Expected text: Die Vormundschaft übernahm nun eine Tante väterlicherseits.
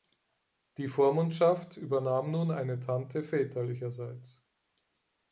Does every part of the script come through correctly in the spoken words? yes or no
yes